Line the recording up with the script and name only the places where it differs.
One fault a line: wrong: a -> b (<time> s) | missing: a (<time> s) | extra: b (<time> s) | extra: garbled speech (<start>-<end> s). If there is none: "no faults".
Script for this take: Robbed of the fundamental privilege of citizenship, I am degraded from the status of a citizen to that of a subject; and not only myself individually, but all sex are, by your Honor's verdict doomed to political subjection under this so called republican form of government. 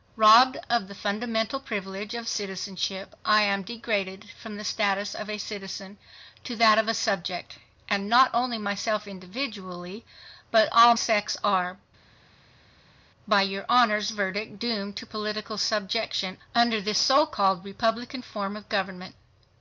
no faults